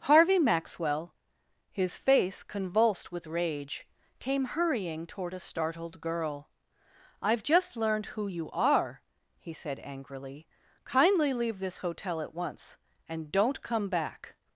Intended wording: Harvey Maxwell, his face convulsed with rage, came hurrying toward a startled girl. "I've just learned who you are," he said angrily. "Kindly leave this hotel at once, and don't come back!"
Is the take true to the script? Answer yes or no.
yes